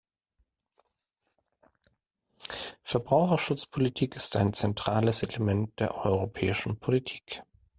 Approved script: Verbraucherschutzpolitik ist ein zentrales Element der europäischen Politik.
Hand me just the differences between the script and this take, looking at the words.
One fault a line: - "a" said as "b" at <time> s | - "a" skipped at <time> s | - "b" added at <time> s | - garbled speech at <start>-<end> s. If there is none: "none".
none